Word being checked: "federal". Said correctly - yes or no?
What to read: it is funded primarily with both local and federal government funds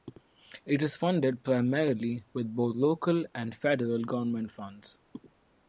yes